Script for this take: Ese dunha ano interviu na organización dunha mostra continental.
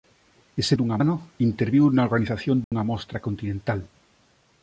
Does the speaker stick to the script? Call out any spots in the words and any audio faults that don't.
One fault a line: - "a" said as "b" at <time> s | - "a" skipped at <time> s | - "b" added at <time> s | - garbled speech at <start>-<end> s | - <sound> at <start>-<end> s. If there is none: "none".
- dropout at 2.6-2.7 s